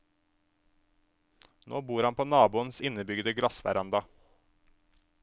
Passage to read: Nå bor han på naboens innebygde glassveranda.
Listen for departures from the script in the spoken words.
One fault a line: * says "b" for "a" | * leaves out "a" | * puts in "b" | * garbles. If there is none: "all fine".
all fine